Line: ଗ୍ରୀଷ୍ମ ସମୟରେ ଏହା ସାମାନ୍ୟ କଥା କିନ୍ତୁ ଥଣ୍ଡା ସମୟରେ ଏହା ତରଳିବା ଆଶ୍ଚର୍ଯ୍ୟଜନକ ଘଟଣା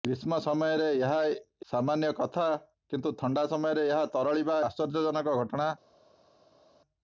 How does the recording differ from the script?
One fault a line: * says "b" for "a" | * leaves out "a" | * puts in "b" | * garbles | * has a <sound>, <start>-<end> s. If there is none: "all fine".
all fine